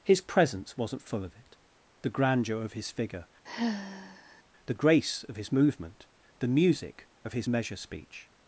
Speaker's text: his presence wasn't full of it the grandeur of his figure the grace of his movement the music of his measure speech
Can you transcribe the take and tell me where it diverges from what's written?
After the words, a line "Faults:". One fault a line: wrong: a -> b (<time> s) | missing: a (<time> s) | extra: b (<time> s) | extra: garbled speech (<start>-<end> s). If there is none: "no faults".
his presence wasn't full of it the grandeur of his figure the grace of his movement the music of his measure speech
Faults:
no faults